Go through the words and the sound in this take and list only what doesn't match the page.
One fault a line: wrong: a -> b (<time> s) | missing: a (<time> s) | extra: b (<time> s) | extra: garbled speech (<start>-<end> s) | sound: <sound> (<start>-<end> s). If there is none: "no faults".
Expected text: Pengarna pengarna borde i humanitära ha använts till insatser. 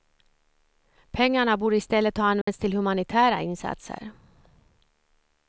missing: pengarna (1.6 s)
wrong: humanitära -> stället (1.8 s)
sound: dropout (2.4-2.5 s)
extra: humanitära (2.7 s)